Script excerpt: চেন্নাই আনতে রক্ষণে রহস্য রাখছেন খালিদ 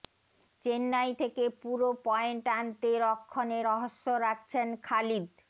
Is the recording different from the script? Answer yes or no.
yes